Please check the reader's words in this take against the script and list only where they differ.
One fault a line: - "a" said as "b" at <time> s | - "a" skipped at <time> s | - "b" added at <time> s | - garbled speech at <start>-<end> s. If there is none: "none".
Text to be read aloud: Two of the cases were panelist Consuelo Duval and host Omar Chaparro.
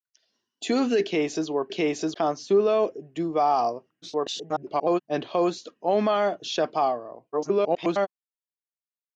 - "panelist" said as "cases" at 1.7 s
- garbled speech at 4.0-5.0 s
- garbled speech at 7.3-8.1 s